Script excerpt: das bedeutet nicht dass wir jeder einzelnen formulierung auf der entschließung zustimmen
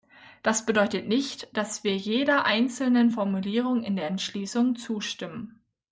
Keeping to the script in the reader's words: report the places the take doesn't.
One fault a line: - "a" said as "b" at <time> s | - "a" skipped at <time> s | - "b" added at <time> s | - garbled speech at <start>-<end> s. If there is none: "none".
- "auf" said as "in" at 3.8 s